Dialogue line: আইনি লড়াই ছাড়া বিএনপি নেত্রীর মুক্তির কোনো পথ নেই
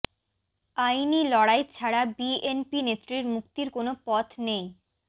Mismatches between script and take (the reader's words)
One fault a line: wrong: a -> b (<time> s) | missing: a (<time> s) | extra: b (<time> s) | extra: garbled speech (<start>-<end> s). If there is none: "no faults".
no faults